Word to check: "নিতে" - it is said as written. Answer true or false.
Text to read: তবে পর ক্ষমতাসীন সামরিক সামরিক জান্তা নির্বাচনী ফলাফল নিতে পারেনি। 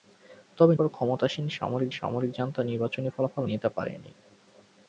true